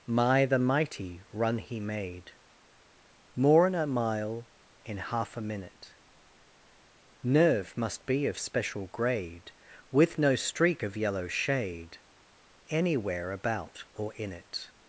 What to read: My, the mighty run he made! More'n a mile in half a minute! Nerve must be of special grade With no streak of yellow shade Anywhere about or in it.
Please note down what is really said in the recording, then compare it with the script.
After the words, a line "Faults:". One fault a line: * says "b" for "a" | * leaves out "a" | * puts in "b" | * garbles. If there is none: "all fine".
My, the mighty run he made! More'n a mile in half a minute! Nerve must be of special grade With no streak of yellow shade Anywhere about or in it.
Faults:
all fine